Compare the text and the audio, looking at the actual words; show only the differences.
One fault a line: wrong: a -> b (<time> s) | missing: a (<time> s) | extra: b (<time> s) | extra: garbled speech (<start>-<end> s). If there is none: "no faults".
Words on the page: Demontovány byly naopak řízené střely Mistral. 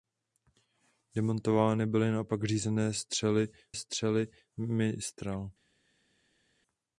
extra: střely (3.7 s)